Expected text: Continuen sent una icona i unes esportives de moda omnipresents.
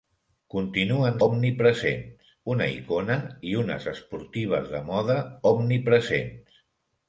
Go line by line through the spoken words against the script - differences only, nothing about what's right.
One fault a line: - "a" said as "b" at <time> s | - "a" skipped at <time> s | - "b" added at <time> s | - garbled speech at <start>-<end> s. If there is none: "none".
- "sent" said as "omnipresents" at 1.3 s